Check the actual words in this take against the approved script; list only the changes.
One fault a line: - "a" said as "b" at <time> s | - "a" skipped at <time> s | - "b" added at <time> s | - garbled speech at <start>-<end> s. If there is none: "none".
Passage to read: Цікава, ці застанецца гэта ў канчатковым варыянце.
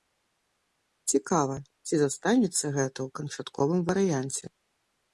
none